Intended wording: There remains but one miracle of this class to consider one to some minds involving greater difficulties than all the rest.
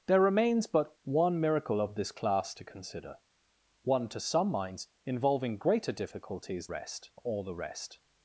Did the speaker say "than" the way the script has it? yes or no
no